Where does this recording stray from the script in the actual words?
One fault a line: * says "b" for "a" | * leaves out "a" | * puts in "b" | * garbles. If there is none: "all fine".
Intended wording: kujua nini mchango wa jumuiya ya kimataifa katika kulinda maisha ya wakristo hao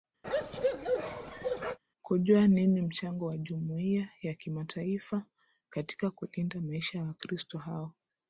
all fine